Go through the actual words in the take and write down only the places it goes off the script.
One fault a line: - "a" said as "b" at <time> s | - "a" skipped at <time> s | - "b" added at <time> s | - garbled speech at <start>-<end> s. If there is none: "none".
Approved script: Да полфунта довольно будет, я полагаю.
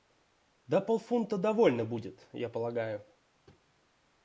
none